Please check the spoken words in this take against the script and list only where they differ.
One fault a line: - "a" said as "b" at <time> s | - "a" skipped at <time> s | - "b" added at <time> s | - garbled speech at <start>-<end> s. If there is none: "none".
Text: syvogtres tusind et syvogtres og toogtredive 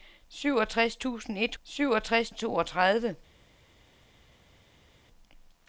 none